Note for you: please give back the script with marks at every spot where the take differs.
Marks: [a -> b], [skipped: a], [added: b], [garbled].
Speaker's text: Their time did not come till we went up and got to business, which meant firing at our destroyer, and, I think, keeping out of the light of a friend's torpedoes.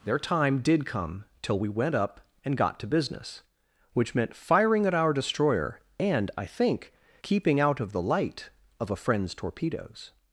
Their time did [skipped: not] come till we went up and got to business, which meant firing at our destroyer, and, I think, keeping out of the light of a friend's torpedoes.